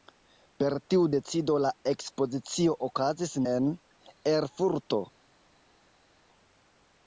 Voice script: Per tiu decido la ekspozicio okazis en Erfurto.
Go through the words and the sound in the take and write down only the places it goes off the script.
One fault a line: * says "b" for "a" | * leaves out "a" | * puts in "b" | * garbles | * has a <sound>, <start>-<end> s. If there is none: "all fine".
all fine